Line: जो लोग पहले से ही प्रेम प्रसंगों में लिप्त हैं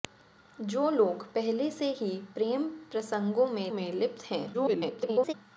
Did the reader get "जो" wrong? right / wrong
right